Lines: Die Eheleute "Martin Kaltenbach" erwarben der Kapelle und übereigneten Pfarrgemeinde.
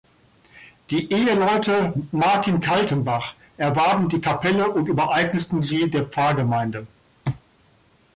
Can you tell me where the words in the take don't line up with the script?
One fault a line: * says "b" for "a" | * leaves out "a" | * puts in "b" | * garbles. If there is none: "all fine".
* says "die" for "der"
* puts in "sie der"